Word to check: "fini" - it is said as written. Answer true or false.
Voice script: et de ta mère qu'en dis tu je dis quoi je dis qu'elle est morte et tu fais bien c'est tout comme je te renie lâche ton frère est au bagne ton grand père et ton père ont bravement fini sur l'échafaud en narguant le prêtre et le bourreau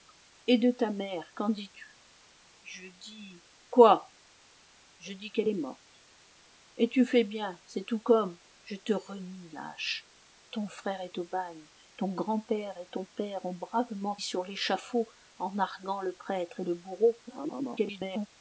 false